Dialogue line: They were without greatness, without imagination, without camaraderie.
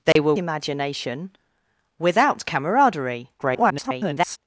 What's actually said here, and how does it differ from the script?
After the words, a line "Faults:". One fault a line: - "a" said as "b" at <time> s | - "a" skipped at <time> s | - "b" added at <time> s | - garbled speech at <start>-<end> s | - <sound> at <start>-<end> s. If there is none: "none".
They were imagination, without camaraderie. [garbled]
Faults:
- dropout at 0.1-0.2 s
- "without greatness without" skipped at 0.3 s
- garbled speech at 3.4-4.4 s